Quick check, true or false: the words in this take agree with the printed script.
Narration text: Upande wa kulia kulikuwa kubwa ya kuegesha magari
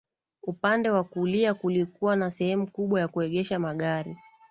false